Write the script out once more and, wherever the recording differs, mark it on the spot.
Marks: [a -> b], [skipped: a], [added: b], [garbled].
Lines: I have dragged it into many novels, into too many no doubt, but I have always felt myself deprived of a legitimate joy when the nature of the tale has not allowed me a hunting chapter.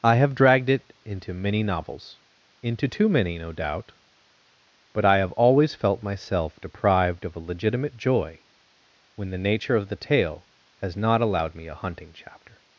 I have dragged it into many novels, into too many no doubt, but I have always felt myself deprived of a legitimate joy when the nature of the tale has not allowed me a hunting chapter.